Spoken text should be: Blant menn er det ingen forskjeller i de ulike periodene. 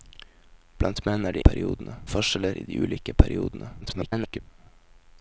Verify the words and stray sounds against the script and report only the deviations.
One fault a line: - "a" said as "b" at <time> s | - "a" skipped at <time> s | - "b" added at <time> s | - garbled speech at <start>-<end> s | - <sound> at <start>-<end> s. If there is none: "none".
- "ingen" said as "periodene" at 1.4 s
- garbled speech at 3.8-4.4 s